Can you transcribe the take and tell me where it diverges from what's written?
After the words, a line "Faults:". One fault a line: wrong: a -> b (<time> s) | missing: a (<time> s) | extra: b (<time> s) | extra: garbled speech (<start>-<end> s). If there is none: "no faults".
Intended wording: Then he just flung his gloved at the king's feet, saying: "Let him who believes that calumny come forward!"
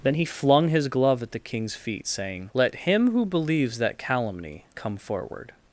Then he flung his glove at the king's feet, saying: "Let him who believes that calumny come forward!"
Faults:
missing: just (0.2 s)
wrong: gloved -> glove (0.9 s)